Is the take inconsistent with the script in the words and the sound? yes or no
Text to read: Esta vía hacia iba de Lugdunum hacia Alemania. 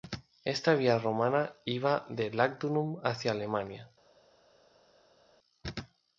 yes